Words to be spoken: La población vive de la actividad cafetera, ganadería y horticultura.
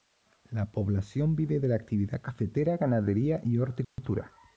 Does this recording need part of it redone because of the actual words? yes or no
no